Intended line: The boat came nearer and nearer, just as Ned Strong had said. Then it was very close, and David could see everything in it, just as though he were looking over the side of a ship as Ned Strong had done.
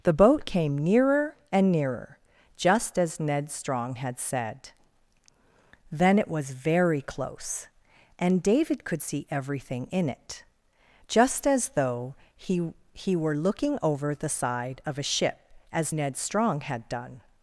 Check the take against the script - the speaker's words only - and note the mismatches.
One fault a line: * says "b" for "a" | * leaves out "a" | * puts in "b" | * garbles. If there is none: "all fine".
* puts in "he"